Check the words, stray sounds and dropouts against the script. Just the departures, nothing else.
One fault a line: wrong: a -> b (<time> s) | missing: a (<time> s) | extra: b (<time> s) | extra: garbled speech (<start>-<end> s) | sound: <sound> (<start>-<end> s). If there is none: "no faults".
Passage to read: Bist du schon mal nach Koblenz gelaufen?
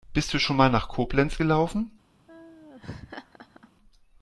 sound: laugh (2.3-3.7 s)